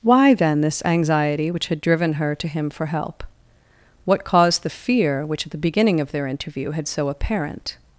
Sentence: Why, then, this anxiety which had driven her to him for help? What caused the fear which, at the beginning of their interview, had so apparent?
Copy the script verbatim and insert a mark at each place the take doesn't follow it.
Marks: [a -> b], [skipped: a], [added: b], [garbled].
Why, then, this anxiety which had driven her to him for help? What caused the fear which, at the beginning of their interview, had so apparent?